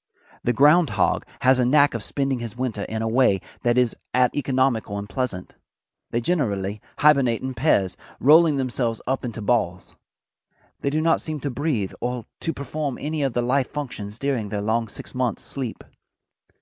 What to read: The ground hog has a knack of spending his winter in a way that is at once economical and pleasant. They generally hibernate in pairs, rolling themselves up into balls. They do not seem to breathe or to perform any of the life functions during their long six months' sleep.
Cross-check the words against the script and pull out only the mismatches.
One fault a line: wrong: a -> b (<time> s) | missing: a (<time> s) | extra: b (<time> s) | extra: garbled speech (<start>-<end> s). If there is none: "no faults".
missing: once (4.3 s)